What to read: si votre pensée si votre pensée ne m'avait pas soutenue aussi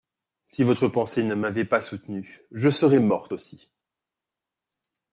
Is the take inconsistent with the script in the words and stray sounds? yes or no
yes